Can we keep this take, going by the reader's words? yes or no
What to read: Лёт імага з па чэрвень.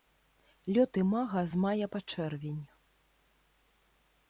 no